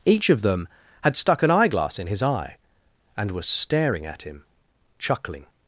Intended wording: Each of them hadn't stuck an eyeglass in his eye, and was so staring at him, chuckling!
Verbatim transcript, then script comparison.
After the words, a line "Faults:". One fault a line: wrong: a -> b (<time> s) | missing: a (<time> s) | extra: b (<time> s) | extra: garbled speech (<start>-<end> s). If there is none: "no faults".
Each of them had stuck an eyeglass in his eye, and was staring at him, chuckling!
Faults:
wrong: hadn't -> had (1.0 s)
missing: so (3.5 s)